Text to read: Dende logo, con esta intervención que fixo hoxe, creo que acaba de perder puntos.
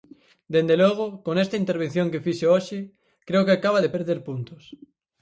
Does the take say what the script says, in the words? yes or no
yes